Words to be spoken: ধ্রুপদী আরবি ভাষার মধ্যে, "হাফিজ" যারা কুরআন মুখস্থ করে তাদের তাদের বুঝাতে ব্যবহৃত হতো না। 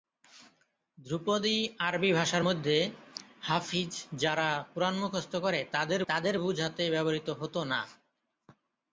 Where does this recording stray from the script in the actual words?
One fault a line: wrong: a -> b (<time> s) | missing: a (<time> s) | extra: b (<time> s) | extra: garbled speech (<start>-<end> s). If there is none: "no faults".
no faults